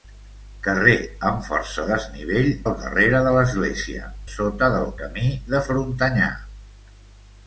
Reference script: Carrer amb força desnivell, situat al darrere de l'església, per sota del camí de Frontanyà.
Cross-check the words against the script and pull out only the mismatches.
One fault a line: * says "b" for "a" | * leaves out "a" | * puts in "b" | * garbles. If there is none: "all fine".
* leaves out "situat"
* leaves out "per"